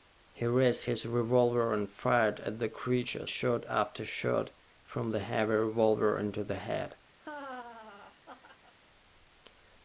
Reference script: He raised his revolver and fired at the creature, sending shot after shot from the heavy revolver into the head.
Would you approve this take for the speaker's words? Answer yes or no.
no